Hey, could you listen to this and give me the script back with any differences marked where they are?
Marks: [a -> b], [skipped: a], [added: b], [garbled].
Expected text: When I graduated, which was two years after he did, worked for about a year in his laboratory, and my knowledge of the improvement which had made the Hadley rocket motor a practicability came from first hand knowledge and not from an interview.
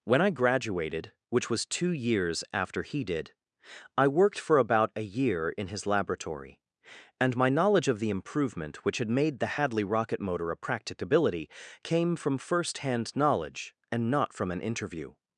When I graduated, which was two years after he did, [added: I] worked for about a year in his laboratory, and my knowledge of the improvement which had made the Hadley rocket motor a practicability came from first hand knowledge and not from an interview.